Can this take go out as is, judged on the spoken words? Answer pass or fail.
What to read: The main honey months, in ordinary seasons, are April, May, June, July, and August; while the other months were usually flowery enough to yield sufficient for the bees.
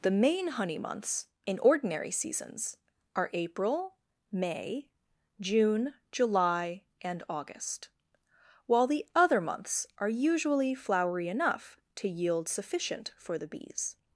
fail